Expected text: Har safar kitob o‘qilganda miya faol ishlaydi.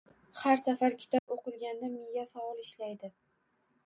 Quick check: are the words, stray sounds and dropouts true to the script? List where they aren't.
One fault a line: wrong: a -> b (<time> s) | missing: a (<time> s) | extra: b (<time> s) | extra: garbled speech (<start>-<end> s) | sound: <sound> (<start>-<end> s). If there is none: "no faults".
sound: dropout (1.2-1.3 s)